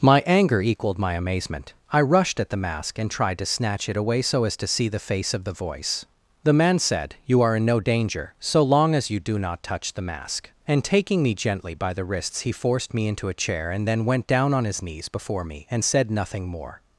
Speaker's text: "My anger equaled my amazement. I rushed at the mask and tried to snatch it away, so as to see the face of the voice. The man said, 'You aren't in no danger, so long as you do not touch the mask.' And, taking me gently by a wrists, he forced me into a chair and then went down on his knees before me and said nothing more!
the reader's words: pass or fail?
fail